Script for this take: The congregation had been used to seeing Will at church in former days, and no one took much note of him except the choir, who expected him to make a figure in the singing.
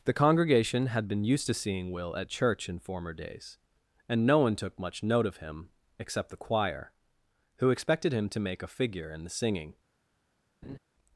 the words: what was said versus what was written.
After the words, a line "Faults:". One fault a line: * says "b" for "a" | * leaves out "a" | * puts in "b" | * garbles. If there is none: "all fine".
The congregation had been used to seeing Will at church in former days, and no one took much note of him except the choir, who expected him to make a figure in the singing.
Faults:
all fine